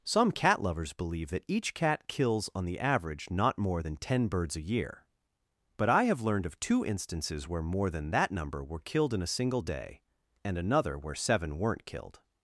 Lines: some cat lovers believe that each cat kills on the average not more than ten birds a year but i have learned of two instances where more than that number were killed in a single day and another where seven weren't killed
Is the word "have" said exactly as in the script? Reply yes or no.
yes